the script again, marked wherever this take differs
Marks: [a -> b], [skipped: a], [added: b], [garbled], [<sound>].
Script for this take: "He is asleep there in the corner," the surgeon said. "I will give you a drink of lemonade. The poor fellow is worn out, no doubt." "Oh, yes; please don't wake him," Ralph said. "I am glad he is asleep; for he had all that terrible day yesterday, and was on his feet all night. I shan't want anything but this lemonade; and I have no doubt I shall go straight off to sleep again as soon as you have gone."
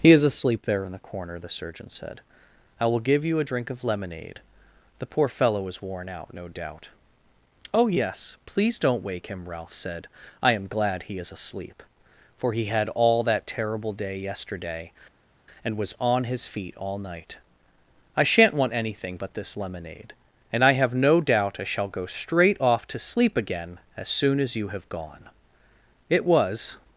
"He is asleep there in the corner," the surgeon said. "I will give you a drink of lemonade. The poor fellow is worn out, no doubt." "Oh, yes; please don't wake him," Ralph said. "I am glad he is asleep; for he had all that terrible day yesterday, and was on his feet all night. I shan't want anything but this lemonade; and I have no doubt I shall go straight off to sleep again as soon as you have gone." [added: It was]